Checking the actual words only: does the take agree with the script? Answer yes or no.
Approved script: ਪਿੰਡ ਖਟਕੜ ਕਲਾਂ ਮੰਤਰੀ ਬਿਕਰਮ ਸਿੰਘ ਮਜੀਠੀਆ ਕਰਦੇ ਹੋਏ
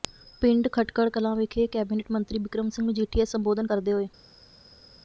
no